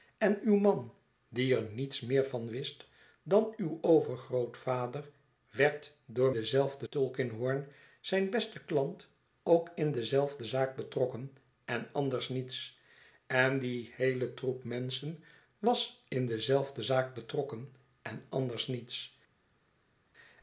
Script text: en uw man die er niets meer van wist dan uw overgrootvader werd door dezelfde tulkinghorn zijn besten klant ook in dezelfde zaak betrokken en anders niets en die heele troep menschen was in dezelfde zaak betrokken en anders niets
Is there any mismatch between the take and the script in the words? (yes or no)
no